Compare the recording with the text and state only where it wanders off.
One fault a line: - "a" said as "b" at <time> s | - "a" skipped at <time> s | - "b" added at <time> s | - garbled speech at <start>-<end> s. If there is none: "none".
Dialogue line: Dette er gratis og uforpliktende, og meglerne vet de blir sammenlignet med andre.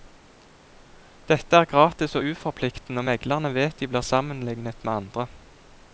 none